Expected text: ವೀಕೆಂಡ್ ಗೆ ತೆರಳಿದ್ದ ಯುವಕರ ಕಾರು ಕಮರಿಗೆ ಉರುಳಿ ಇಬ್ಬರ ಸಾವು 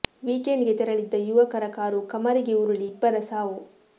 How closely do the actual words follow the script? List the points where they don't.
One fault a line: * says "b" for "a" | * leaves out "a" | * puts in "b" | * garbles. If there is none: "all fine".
all fine